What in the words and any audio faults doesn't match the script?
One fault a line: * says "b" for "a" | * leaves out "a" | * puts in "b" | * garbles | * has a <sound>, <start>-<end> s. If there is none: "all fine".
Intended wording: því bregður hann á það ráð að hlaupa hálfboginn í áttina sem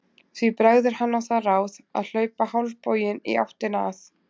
* says "að" for "sem"